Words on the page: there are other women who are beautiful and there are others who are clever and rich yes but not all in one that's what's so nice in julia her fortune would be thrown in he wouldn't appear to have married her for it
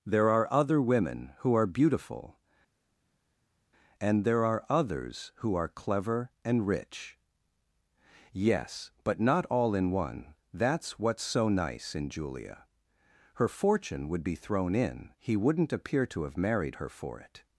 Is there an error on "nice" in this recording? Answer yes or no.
no